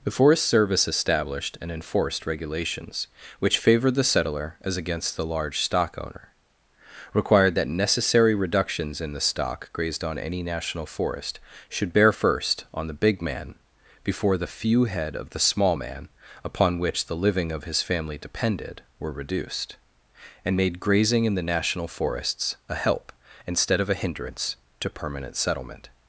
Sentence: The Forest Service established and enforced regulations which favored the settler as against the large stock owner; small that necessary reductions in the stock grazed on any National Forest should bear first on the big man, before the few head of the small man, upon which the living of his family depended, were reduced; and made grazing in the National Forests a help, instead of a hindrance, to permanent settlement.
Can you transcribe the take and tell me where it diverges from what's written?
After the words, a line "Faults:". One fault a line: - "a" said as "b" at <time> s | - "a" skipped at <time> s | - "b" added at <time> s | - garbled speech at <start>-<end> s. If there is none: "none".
The Forest Service established and enforced regulations which favored the settler as against the large stock owner; required that necessary reductions in the stock grazed on any National Forest should bear first on the big man, before the few head of the small man, upon which the living of his family depended, were reduced; and made grazing in the National Forests a help, instead of a hindrance, to permanent settlement.
Faults:
- "small" said as "required" at 7.1 s